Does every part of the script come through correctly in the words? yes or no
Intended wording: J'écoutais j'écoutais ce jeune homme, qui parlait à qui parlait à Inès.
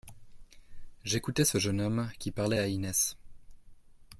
no